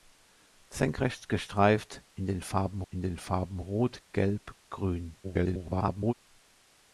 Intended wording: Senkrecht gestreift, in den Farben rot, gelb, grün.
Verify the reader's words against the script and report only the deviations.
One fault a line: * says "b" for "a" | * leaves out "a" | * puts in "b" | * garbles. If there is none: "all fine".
* puts in "in den Farben"
* garbles